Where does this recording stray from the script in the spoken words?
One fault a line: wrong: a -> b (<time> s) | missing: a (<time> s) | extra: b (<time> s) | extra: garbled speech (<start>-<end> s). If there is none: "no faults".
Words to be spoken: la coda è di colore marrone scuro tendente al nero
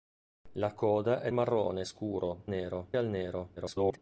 missing: di colore (1.3 s)
wrong: tendente -> nero (2.4 s)
extra: garbled speech (3.6-4.0 s)